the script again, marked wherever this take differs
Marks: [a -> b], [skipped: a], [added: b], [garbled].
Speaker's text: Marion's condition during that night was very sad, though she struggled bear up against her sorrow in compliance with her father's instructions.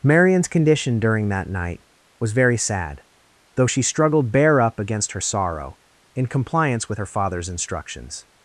Marion's condition during that night was very sad, though she struggled bear up against her sorrow in compliance with her father's instructions.